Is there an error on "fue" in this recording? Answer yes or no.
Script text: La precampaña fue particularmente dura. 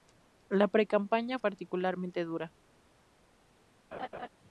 yes